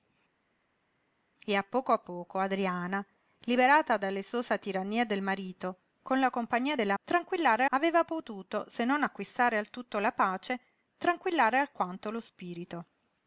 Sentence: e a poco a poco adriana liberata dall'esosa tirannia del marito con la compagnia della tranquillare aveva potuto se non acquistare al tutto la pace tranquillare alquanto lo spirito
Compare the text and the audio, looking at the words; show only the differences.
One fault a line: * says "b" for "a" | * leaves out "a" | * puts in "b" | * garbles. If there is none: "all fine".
all fine